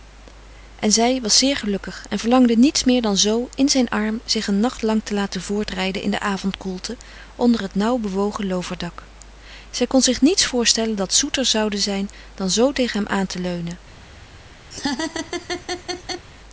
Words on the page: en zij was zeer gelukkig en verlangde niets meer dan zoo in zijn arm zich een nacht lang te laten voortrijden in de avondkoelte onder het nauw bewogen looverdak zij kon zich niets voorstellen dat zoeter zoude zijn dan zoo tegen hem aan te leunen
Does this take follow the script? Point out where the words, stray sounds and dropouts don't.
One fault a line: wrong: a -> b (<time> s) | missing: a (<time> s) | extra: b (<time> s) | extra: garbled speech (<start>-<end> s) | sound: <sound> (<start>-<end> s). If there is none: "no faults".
sound: laugh (14.7-16.3 s)